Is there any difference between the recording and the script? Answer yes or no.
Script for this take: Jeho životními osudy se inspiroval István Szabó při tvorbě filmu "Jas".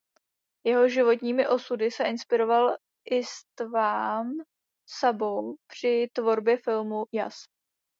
no